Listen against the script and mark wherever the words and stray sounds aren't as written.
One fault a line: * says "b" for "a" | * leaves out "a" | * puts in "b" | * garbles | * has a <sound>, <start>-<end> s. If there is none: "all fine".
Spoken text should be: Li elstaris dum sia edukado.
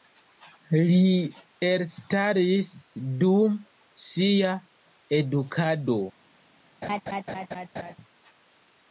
* has a laugh, 6.8-8.0 s